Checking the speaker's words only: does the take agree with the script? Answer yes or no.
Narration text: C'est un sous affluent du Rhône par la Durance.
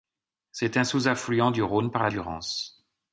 yes